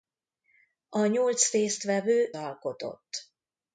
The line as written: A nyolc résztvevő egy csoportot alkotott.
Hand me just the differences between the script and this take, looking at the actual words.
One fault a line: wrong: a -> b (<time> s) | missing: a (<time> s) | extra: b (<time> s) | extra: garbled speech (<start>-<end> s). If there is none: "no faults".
missing: egy csoportot (2.3 s)